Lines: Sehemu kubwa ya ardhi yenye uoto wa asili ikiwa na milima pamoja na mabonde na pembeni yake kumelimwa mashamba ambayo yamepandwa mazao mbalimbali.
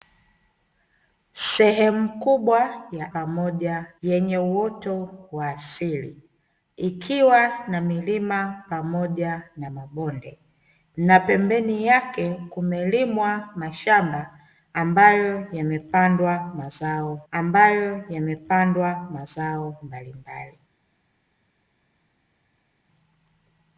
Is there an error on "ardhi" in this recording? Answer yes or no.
yes